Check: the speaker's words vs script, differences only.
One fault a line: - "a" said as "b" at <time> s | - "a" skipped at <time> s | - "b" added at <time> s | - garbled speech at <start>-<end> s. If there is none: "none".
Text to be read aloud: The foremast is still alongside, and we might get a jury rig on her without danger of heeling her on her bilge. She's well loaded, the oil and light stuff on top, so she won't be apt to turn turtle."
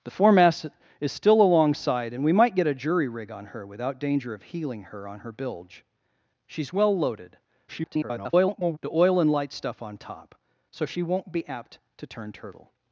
- garbled speech at 7.7-8.8 s